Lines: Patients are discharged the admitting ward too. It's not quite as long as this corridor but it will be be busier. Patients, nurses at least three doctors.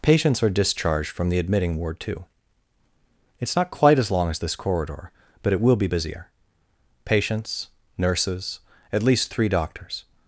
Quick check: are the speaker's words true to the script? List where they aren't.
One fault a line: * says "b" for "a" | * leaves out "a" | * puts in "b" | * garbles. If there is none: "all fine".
* puts in "from"
* leaves out "be"